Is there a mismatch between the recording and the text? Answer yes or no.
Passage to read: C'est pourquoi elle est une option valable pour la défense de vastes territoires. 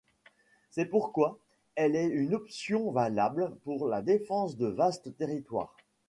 no